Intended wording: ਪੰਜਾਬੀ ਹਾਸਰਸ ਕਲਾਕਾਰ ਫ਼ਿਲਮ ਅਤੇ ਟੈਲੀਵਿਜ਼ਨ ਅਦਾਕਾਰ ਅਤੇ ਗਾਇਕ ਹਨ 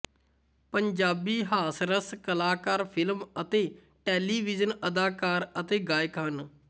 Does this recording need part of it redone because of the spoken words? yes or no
no